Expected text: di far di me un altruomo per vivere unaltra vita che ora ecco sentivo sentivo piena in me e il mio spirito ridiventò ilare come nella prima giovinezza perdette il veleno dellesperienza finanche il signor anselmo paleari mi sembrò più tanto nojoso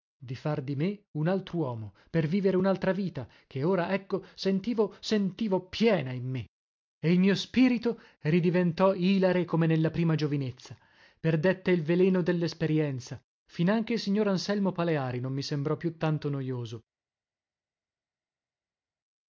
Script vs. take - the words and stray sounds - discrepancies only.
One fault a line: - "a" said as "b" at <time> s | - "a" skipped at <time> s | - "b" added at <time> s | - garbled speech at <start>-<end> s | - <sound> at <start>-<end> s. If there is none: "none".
- "non" added at 15.2 s